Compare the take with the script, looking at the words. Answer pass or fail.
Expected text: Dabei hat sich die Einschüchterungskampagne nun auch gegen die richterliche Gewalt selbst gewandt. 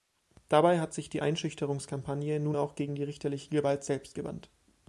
pass